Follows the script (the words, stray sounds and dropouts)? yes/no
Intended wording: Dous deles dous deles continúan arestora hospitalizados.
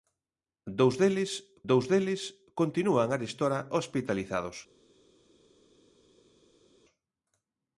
yes